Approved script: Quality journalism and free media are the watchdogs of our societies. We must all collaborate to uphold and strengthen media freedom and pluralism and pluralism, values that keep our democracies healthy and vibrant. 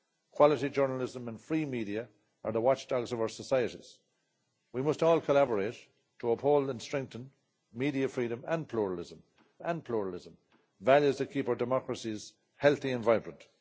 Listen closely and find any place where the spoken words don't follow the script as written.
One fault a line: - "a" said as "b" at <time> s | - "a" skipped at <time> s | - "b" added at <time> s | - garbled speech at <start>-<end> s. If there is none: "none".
none